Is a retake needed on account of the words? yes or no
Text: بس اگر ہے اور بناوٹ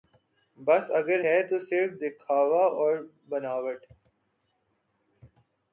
yes